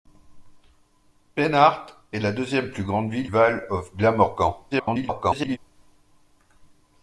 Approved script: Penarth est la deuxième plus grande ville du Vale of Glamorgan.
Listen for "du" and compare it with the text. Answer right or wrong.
wrong